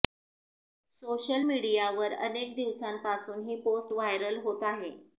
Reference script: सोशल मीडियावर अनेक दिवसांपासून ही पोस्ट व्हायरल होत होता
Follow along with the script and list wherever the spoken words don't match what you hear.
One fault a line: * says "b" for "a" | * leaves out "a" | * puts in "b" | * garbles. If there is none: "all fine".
* says "आहे" for "होता"